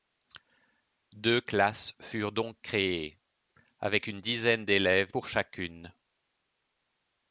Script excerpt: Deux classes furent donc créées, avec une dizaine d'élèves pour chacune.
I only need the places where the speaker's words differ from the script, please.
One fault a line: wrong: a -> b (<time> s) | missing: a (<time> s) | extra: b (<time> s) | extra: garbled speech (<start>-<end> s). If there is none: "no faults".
no faults